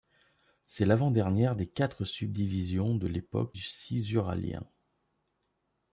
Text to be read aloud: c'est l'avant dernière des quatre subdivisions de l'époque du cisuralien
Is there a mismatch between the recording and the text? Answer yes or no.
yes